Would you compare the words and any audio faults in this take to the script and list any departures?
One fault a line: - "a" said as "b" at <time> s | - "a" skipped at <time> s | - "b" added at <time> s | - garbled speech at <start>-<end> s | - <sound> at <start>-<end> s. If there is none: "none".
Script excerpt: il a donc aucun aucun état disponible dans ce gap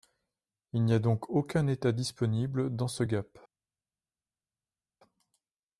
- "n'y" added at 0.8 s
- "aucun" skipped at 1.7 s